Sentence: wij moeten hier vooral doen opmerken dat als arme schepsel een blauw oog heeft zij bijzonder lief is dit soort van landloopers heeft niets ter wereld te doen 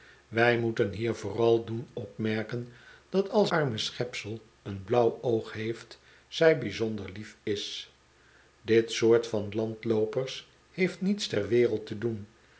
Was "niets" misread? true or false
false